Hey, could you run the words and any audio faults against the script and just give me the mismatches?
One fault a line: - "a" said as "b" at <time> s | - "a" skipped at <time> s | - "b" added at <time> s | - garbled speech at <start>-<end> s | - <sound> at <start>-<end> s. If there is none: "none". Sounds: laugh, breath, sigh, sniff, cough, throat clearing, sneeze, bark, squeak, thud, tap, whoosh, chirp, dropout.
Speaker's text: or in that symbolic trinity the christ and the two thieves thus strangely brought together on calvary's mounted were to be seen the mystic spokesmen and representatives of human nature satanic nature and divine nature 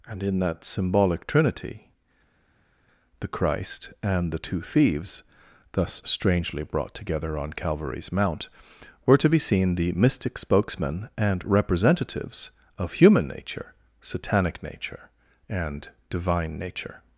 - "or" said as "and" at 0.1 s
- "mounted" said as "mount" at 8.1 s